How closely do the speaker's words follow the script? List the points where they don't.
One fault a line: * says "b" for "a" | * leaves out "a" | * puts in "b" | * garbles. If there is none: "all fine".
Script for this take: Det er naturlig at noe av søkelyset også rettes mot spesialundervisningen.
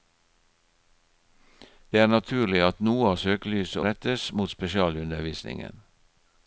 * leaves out "også"